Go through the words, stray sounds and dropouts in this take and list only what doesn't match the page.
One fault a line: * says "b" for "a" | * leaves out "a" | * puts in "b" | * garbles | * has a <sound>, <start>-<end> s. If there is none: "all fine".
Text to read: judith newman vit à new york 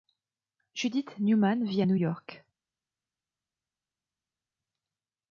all fine